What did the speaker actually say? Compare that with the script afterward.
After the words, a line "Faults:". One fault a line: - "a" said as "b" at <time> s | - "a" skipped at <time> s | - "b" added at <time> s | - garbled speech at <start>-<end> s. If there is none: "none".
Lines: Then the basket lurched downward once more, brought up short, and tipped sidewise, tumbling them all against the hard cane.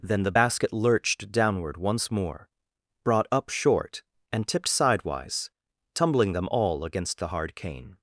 Then the basket lurched downward once more, brought up short, and tipped sidewise, tumbling them all against the hard cane.
Faults:
none